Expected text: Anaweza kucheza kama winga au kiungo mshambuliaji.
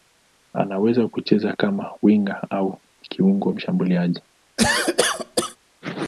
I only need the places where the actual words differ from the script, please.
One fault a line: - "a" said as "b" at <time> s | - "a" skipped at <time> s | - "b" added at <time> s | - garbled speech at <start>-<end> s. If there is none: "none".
none